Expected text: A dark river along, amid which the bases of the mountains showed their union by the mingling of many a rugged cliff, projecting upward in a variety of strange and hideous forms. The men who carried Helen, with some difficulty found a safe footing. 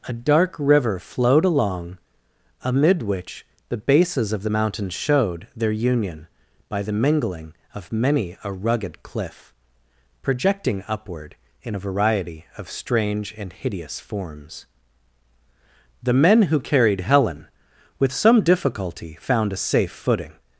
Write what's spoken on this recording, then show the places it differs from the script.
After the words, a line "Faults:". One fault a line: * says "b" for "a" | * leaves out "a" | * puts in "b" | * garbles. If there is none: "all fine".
A dark river flowed along, amid which the bases of the mountains showed their union by the mingling of many a rugged cliff, projecting upward in a variety of strange and hideous forms. The men who carried Helen, with some difficulty found a safe footing.
Faults:
* puts in "flowed"